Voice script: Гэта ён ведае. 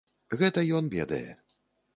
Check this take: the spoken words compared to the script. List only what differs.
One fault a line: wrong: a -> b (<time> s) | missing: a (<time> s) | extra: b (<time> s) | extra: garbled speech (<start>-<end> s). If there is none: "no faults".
no faults